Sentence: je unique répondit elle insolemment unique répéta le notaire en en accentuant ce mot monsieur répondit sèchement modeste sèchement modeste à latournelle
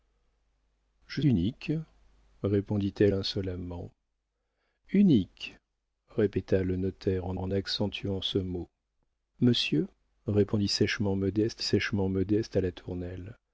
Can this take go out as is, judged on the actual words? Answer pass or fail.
pass